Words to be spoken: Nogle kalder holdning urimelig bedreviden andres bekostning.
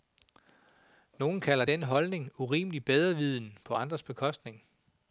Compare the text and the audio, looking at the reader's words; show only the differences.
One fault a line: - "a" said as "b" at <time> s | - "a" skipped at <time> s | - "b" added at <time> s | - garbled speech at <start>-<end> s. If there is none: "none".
- "den" added at 1.6 s
- "på" added at 3.6 s